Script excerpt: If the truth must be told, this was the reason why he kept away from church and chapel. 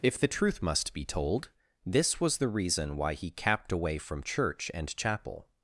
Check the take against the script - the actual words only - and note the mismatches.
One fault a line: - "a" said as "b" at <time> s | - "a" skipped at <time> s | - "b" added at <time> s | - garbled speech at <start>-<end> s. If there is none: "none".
- "kept" said as "capped" at 3.3 s